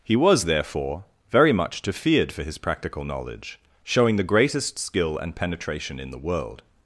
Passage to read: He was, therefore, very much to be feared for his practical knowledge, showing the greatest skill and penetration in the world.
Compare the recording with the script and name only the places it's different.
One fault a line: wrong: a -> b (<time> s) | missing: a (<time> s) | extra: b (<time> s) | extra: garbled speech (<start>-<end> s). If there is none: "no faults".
missing: be (1.9 s)